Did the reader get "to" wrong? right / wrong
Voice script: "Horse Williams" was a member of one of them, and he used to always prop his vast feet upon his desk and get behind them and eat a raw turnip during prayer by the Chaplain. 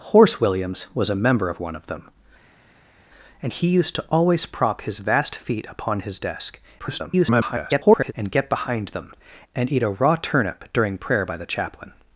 right